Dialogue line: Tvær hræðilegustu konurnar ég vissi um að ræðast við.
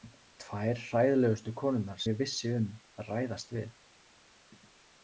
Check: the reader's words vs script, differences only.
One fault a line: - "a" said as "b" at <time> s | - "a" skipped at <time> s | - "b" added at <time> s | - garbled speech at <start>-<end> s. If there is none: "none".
none